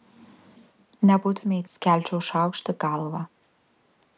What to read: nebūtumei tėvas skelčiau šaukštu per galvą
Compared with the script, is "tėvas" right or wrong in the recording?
wrong